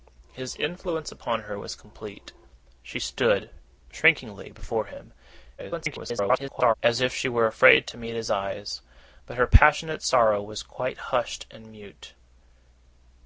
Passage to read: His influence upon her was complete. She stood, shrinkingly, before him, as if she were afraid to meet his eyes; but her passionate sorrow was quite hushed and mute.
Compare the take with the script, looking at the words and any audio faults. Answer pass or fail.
fail